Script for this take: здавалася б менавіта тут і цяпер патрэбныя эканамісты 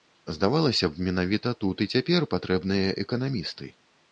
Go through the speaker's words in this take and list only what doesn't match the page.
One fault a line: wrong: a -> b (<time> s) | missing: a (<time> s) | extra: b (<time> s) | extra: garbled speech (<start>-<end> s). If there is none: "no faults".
no faults